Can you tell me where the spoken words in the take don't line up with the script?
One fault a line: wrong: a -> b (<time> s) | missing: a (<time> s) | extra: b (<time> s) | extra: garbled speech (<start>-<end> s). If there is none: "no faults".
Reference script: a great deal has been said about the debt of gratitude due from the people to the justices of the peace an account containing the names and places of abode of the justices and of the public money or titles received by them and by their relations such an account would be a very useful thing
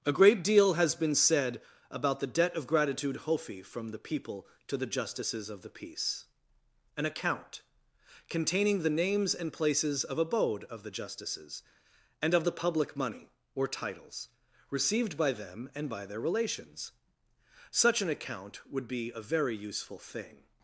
wrong: due -> hofi (3.2 s)